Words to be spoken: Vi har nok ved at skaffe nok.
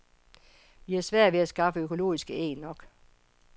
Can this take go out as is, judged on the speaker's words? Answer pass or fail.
fail